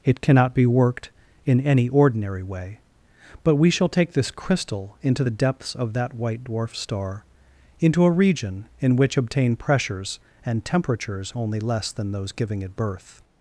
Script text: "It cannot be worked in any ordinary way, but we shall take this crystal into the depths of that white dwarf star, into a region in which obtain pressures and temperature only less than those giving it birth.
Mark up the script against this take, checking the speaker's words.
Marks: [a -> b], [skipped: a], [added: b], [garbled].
"It cannot be worked in any ordinary way, but we shall take this crystal into the depths of that white dwarf star, into a region in which obtain pressures and [temperature -> temperatures] only less than those giving it birth.